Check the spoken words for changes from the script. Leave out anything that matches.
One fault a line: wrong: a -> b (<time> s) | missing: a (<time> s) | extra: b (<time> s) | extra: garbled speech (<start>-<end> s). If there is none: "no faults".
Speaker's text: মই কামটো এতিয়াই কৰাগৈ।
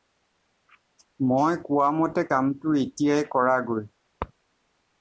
extra: কোৱামতে (1.6 s)